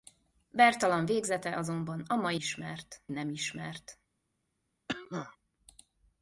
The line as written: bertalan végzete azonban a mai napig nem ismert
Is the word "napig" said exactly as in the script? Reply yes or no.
no